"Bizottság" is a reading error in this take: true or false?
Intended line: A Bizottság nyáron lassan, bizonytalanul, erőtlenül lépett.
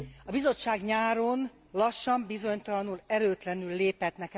false